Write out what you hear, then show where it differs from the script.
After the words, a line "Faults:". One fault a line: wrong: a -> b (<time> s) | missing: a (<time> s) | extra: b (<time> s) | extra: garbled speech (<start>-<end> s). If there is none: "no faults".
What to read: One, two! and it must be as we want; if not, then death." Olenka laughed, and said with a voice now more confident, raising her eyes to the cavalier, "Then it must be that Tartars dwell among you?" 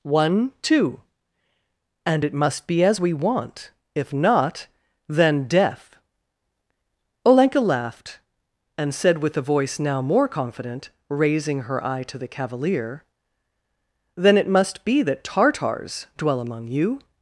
One, two! and it must be as we want; if not, then death." Olenka laughed, and said with a voice now more confident, raising her eye to the cavalier, "Then it must be that Tartars dwell among you?"
Faults:
wrong: eyes -> eye (11.8 s)